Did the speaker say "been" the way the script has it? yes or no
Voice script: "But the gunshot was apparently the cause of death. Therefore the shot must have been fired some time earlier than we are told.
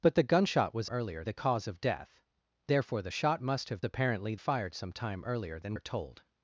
no